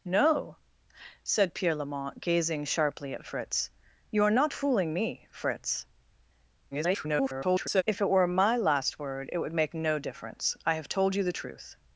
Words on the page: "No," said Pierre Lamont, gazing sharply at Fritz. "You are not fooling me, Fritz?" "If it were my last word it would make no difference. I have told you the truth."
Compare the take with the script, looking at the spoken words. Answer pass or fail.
fail